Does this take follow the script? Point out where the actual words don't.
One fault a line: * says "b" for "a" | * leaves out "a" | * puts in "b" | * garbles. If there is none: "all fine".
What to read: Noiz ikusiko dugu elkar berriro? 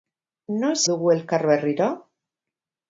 * leaves out "ikusiko"